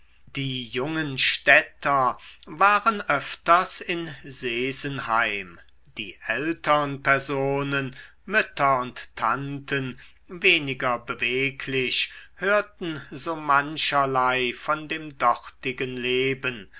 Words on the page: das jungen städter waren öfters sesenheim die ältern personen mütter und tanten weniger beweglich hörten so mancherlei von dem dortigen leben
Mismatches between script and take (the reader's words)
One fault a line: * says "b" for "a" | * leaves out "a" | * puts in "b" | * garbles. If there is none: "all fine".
* says "die" for "das"
* puts in "in"